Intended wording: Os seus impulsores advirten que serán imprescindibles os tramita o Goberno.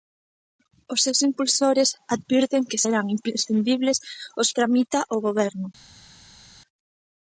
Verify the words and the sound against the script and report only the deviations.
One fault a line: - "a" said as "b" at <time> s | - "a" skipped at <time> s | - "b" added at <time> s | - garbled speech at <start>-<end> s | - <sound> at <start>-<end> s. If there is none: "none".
none